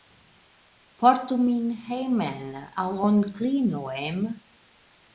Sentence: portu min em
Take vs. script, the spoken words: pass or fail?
fail